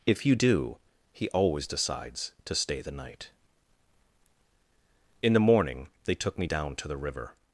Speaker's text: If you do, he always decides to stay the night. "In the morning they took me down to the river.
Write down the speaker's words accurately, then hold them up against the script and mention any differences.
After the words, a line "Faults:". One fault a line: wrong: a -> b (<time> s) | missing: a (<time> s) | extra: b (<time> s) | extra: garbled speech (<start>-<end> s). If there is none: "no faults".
If you do, he always decides to stay the night. "In the morning they took me down to the river.
Faults:
no faults